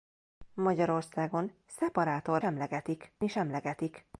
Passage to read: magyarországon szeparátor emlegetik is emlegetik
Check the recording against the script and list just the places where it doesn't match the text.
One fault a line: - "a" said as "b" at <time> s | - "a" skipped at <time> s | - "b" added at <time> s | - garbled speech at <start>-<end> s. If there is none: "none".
none